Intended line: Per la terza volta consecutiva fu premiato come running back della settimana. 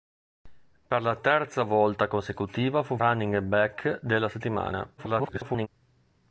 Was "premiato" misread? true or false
true